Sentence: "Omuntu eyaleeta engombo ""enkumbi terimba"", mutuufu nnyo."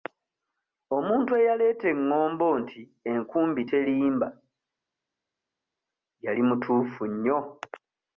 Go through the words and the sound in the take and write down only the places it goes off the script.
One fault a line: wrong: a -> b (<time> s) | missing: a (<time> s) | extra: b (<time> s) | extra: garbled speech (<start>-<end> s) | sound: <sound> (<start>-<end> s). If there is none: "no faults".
extra: nti (2.6 s)
extra: yali (6.2 s)